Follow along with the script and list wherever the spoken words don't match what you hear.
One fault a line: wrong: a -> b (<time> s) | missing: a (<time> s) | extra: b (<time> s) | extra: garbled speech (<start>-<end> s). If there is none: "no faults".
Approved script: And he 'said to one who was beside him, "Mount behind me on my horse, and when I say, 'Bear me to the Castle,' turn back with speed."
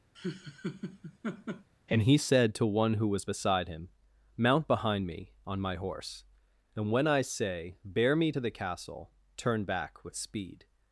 no faults